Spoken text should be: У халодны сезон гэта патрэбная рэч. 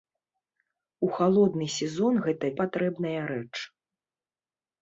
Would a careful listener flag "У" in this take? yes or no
no